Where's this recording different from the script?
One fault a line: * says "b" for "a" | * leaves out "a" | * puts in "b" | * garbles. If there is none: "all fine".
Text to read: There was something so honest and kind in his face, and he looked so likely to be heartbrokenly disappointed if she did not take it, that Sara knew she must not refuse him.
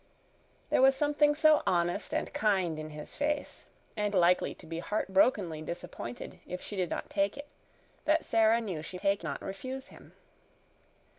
* leaves out "he looked so"
* says "take" for "must"